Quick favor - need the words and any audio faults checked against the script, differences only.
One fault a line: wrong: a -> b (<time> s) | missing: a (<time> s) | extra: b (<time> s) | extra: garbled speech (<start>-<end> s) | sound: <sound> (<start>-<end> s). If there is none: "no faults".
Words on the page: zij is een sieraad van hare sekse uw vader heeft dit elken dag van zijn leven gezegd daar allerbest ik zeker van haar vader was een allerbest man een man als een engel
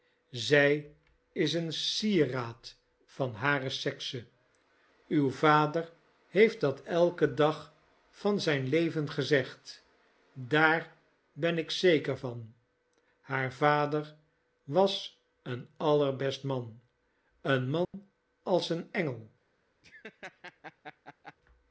wrong: dit -> dat (6.6 s)
wrong: allerbest -> ben (11.3 s)
sound: dropout (17.8-17.9 s)
sound: laugh (19.8-21.4 s)